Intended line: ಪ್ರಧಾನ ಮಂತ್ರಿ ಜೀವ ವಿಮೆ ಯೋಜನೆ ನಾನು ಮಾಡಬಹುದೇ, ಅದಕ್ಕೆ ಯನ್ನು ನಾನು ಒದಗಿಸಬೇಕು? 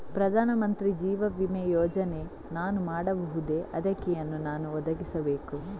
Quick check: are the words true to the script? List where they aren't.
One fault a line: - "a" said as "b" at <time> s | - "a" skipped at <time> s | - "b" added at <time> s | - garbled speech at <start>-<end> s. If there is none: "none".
none